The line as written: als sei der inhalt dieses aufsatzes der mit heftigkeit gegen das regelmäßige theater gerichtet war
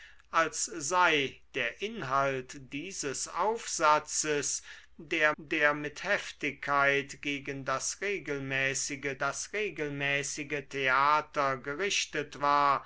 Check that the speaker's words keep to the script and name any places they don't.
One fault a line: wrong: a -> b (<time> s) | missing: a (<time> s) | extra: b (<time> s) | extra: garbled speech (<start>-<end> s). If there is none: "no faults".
extra: der (5.4 s)
extra: das regelmäßige (9.2 s)